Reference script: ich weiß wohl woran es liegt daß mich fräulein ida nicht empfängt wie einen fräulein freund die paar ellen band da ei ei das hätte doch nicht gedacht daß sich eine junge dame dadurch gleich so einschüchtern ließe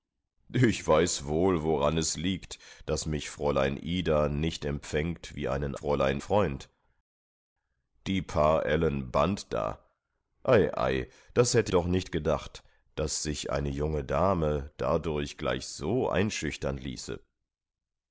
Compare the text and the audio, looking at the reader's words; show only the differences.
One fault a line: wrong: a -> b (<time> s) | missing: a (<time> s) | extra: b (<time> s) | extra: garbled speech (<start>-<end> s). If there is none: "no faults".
no faults